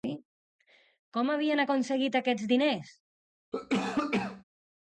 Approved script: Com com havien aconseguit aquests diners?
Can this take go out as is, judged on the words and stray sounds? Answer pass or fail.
fail